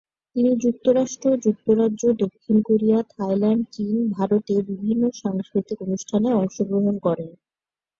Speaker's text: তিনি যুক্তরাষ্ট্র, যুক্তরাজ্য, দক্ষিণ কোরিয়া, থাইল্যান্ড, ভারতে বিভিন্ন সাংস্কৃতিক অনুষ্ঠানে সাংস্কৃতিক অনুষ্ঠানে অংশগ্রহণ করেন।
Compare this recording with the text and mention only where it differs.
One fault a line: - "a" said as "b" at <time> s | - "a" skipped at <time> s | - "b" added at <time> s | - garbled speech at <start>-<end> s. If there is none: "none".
- "চীন" added at 3.7 s
- "সাংস্কৃতিক অনুষ্ঠানে" skipped at 6.3 s